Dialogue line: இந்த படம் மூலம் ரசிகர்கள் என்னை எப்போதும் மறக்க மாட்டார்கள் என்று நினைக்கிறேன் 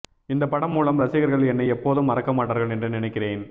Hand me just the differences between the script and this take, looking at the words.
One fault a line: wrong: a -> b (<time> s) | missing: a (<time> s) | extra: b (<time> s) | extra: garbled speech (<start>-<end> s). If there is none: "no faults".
no faults